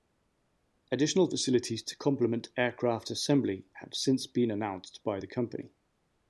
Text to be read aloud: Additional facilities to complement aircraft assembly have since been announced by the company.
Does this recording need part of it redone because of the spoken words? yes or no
no